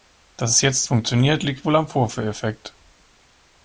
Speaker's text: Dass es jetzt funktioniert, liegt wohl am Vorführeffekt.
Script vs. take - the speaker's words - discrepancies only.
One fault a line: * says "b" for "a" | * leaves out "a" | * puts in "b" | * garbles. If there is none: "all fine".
all fine